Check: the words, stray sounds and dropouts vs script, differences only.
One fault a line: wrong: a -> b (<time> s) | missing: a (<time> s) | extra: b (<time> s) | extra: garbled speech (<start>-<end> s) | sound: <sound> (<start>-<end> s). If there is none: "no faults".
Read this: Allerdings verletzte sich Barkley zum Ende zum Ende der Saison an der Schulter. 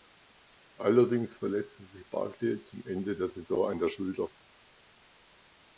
missing: zum Ende (3.1 s)